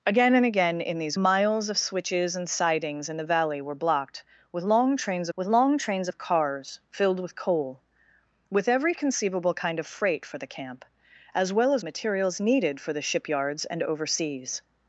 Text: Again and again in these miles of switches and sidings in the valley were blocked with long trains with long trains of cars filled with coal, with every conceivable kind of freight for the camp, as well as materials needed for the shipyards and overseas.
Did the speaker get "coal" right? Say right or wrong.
right